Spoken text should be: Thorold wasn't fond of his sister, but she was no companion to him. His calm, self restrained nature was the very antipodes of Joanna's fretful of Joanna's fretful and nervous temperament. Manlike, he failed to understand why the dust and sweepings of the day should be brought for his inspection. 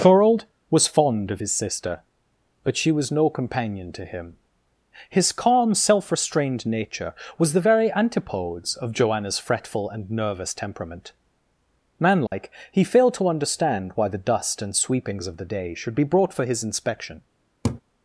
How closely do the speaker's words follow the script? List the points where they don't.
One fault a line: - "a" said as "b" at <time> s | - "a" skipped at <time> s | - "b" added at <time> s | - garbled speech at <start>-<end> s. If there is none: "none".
- "wasn't" said as "was" at 0.7 s
- "of Joanna's fretful" skipped at 9.9 s